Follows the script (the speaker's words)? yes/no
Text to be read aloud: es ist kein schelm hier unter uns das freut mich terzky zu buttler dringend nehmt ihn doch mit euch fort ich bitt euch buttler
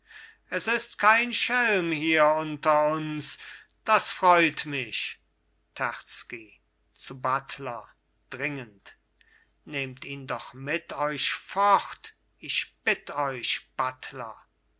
yes